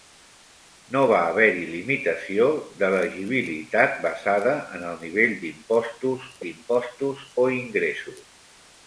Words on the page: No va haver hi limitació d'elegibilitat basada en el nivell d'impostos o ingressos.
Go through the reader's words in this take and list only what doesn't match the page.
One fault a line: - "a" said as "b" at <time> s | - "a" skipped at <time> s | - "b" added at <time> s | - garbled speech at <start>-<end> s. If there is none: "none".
- "d'impostos" added at 6.5 s